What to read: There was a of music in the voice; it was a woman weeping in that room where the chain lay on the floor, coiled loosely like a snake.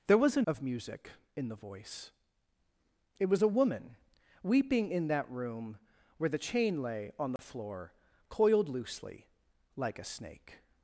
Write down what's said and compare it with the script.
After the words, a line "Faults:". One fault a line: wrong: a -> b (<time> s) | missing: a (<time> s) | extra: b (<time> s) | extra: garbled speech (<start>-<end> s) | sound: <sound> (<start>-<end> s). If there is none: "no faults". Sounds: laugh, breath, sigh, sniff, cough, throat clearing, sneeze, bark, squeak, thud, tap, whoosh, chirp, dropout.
There was a of music in the voice; it was a woman weeping in that room where the chain lay on the floor, coiled loosely like a snake.
Faults:
sound: dropout (7.4-7.4 s)